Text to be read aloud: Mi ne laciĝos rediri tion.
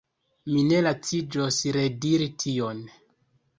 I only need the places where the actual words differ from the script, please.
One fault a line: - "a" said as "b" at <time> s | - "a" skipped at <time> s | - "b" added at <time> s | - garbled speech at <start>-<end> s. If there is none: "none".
none